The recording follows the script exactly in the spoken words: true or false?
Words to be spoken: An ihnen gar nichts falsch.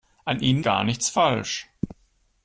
true